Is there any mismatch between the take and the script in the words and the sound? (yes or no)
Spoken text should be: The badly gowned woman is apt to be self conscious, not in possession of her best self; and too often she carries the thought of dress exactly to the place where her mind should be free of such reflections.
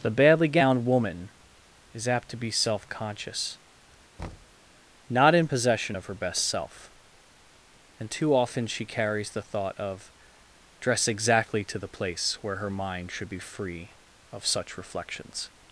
yes